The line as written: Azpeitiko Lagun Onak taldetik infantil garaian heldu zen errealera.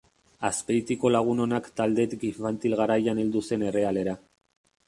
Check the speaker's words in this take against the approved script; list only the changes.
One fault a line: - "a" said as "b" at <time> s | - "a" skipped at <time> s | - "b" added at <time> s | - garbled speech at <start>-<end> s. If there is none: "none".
none